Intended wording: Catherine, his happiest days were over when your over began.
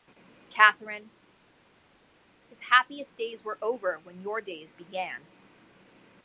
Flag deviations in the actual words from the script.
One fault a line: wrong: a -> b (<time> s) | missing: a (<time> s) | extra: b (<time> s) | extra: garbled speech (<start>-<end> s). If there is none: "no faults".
wrong: over -> days (4.4 s)